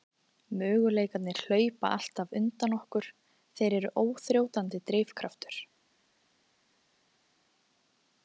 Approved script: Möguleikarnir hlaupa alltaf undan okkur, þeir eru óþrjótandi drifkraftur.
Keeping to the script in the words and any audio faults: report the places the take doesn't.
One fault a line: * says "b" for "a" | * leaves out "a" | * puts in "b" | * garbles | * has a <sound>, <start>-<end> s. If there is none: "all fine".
all fine